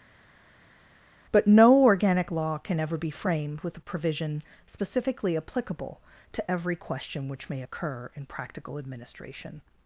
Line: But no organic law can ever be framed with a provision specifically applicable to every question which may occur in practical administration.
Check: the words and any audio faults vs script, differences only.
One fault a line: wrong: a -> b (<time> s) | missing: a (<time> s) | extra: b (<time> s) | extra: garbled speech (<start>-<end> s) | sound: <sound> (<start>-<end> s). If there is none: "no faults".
no faults